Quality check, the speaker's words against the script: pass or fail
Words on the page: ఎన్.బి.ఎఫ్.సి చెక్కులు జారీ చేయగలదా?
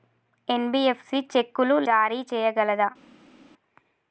pass